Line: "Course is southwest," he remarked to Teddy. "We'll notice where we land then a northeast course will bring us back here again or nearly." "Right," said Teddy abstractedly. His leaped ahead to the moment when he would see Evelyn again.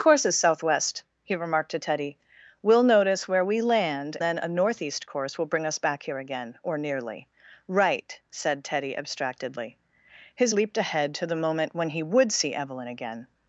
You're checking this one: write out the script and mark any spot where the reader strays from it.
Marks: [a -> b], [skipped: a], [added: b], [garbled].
"Course is southwest," he remarked to Teddy. "We'll notice where we land then a northeast course will bring us back here again or nearly." "Right," said Teddy abstractedly. His leaped ahead to the moment when he would see Evelyn again.